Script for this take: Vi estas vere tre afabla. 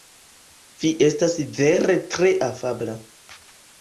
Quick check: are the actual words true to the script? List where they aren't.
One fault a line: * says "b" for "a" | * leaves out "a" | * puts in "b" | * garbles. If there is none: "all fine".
all fine